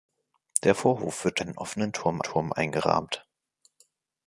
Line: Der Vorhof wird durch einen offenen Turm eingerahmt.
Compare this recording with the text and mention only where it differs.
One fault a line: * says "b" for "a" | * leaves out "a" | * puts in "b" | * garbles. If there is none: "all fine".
* leaves out "durch"
* puts in "Turm"